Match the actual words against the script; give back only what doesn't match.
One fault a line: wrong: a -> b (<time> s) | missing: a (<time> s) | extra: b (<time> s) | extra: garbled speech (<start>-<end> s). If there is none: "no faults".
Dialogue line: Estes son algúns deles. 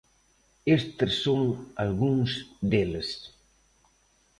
no faults